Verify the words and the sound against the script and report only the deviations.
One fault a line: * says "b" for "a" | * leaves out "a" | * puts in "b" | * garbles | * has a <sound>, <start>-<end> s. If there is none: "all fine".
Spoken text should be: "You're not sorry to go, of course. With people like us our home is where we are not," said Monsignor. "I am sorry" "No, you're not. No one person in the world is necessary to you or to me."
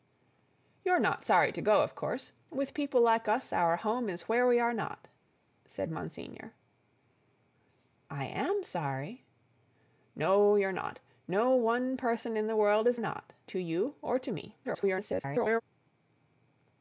* says "not" for "necessary"
* garbles